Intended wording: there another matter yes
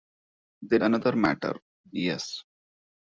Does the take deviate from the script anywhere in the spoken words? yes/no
no